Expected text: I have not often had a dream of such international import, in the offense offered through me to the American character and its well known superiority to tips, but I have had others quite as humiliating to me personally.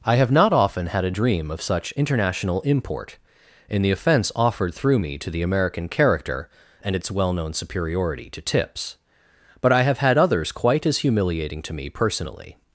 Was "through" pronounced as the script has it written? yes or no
yes